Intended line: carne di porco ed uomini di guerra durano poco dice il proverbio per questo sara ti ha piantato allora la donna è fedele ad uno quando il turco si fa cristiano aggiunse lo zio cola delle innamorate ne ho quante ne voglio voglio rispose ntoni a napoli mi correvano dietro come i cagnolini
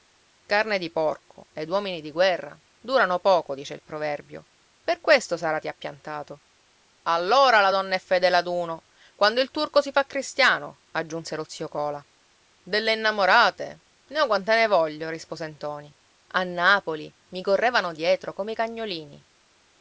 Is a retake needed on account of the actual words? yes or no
yes